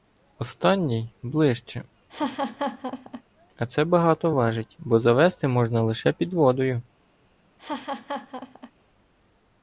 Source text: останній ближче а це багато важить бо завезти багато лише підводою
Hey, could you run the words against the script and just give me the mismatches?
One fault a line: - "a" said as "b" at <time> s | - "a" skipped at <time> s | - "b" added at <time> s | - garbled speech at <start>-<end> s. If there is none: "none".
- "багато" said as "можна" at 5.5 s